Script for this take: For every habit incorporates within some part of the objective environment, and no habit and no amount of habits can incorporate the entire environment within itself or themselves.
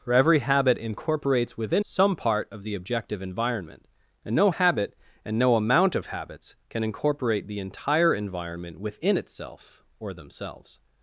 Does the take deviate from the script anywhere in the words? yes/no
no